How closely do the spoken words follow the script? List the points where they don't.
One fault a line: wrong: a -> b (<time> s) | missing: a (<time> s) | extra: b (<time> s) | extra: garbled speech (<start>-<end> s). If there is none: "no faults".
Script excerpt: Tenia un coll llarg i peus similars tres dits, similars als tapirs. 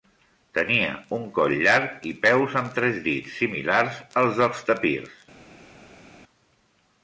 wrong: similars -> amb (2.6 s)
extra: dels (4.4 s)